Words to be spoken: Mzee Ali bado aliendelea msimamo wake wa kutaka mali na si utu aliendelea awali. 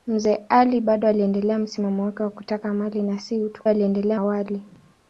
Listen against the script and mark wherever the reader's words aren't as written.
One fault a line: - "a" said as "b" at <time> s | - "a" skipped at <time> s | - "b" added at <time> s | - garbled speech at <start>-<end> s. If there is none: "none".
none